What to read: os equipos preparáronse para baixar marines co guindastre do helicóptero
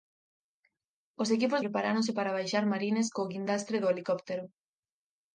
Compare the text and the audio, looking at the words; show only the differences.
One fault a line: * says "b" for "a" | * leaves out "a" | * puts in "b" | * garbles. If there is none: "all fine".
all fine